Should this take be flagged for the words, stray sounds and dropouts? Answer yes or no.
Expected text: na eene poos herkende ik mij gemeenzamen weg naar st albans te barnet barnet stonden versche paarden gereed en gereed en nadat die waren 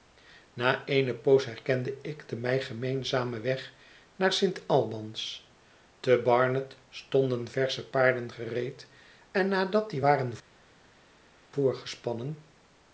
yes